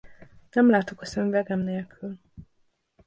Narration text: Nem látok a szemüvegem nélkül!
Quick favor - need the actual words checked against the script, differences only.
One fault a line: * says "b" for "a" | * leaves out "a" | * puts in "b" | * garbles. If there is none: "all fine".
all fine